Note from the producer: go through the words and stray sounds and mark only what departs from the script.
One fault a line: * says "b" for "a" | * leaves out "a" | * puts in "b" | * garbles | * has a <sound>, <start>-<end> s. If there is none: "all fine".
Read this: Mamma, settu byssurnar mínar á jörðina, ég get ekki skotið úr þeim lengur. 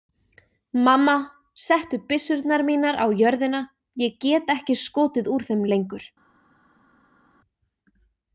all fine